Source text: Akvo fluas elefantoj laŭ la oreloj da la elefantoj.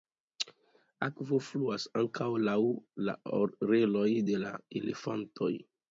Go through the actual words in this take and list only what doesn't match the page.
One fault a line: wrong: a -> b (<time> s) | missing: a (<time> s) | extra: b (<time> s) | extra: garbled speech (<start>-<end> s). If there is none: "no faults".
wrong: elefantoj -> ankaŭ (2.0 s)
wrong: da -> de (4.3 s)